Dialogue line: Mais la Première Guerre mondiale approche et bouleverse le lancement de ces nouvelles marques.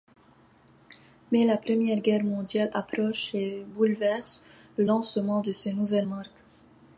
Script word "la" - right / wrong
right